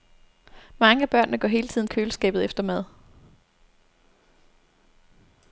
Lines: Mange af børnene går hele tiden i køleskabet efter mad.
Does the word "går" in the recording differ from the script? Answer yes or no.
no